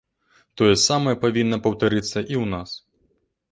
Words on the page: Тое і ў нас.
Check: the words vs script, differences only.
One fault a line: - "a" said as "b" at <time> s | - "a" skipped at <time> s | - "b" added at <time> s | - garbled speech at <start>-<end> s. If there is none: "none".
- "самае павінна паўтарыцца" added at 0.8 s